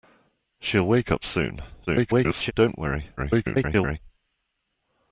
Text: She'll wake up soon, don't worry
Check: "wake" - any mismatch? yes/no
no